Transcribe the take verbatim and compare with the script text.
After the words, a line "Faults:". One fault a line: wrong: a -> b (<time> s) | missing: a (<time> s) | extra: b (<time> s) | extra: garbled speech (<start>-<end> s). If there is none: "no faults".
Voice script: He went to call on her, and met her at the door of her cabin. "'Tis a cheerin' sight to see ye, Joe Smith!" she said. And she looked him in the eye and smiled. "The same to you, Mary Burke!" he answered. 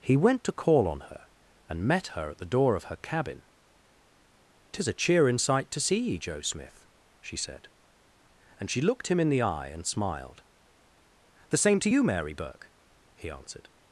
He went to call on her, and met her at the door of her cabin. "'Tis a cheerin' sight to see ye, Joe Smith!" she said. And she looked him in the eye and smiled. "The same to you, Mary Burke!" he answered.
Faults:
no faults